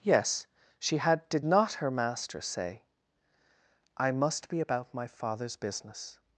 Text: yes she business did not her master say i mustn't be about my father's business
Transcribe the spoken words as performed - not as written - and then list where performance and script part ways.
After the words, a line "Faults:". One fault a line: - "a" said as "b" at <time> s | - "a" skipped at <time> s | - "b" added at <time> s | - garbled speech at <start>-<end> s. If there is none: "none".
yes she had did not her master say i must be about my father's business
Faults:
- "business" said as "had" at 1.0 s
- "mustn't" said as "must" at 4.1 s